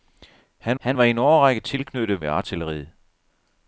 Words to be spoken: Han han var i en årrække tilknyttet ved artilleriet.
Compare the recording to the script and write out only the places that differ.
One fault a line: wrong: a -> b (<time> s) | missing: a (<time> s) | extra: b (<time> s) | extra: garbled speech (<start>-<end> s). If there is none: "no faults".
no faults